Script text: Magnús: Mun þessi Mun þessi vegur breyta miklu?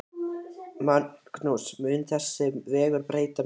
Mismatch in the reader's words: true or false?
true